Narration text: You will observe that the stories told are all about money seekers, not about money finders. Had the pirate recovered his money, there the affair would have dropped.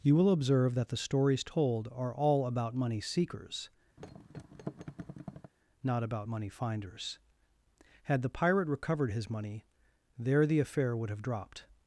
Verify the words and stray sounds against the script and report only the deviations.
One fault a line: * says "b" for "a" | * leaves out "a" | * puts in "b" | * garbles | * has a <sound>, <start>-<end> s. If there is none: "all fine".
* has a thud, 4.0-5.5 s